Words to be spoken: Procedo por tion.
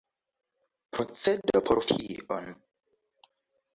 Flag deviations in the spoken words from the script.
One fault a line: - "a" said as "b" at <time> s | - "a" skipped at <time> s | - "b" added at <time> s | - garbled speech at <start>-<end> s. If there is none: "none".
none